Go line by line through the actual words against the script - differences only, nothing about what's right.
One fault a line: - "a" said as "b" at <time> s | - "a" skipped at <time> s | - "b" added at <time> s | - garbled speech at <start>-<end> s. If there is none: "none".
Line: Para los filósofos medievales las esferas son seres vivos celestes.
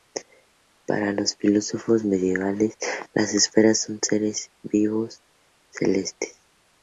none